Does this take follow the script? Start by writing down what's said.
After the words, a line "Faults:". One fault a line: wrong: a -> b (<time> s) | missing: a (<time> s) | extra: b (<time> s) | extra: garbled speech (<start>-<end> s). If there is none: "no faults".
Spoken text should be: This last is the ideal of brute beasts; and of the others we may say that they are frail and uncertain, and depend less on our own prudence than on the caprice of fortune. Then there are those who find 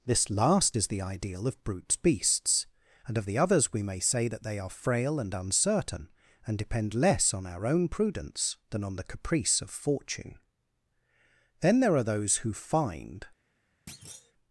This last is the ideal of brute beasts; and of the others we may say that they are frail and uncertain, and depend less on our own prudence than on the caprice of fortune. Then there are those who find
Faults:
no faults